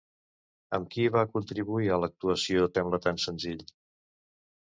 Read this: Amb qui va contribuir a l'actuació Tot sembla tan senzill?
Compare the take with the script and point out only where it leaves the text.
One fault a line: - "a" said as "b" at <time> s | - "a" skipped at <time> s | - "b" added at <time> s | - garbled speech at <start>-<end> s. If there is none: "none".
- "Tot" skipped at 2.7 s